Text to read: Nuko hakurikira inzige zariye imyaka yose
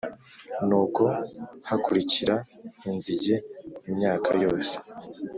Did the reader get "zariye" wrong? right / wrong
wrong